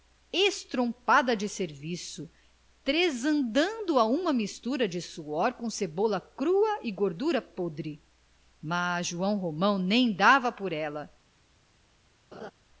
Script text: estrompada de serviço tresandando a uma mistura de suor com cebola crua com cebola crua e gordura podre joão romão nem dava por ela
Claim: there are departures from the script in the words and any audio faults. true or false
true